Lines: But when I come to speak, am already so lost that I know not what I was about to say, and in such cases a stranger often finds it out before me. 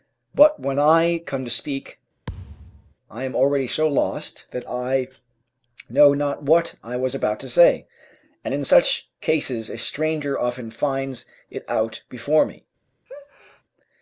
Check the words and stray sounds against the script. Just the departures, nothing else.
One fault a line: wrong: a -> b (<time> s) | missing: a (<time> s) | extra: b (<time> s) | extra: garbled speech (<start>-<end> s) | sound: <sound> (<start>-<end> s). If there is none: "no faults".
sound: thud (2.3-2.9 s)
extra: I (3.1 s)
sound: sneeze (13.1-13.6 s)